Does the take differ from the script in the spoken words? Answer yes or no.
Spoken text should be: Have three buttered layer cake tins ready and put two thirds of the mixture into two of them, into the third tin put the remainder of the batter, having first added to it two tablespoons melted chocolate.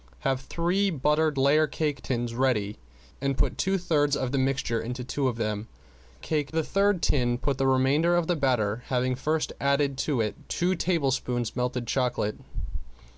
yes